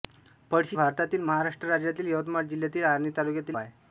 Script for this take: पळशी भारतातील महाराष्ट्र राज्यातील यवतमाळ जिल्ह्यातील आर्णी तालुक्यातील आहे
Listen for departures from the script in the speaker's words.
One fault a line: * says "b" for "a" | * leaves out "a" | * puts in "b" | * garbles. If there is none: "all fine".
all fine